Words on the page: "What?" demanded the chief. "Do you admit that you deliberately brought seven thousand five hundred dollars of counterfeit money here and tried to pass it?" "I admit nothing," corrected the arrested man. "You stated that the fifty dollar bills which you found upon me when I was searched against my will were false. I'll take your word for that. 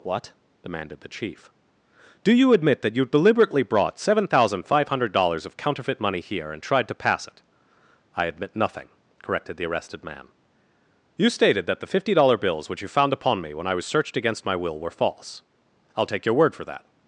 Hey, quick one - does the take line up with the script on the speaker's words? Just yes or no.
yes